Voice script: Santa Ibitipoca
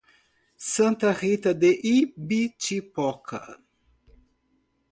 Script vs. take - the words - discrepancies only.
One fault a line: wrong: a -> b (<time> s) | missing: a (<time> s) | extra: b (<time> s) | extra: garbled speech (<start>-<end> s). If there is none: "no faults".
extra: Rita de (1.1 s)